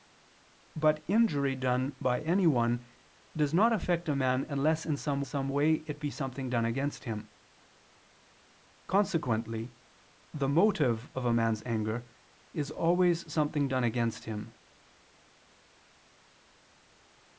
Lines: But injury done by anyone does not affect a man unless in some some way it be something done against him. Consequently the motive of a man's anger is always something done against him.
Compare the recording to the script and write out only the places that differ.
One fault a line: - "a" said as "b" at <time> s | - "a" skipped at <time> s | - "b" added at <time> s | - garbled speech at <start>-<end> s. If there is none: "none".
none